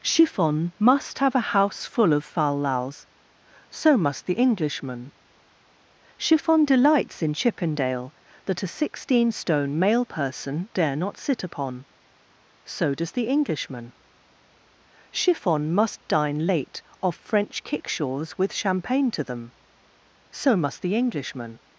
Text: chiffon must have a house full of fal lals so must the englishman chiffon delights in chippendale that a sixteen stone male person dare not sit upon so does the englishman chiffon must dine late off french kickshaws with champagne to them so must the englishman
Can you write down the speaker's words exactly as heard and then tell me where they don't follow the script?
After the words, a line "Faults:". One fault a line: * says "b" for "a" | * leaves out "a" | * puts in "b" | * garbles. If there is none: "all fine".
chiffon must have a house full of fal lals so must the englishman chiffon delights in chippendale that a sixteen stone male person dare not sit upon so does the englishman chiffon must dine late off french kickshaws with champagne to them so must the englishman
Faults:
all fine